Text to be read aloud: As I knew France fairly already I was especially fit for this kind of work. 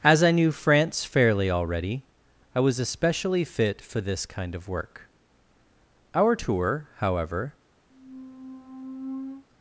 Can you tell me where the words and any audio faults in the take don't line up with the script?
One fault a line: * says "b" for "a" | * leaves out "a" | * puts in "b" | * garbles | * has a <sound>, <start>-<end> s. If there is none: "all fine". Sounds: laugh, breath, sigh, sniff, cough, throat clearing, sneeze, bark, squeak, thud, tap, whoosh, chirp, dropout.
* puts in "Our tour however"
* has a squeak, 7.9-9.4 s